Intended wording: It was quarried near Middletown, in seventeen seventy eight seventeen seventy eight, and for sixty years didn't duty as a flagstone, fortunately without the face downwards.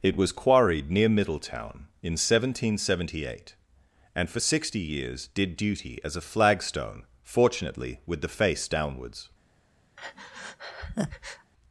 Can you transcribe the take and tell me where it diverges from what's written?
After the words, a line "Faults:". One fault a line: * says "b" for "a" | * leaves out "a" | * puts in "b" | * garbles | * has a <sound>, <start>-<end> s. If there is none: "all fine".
It was quarried near Middletown, in seventeen seventy eight, and for sixty years did duty as a flagstone, fortunately with the face downwards.
Faults:
* leaves out "seventeen seventy eight"
* says "did" for "didn't"
* says "with" for "without"
* has a breath, 10.0-11.5 s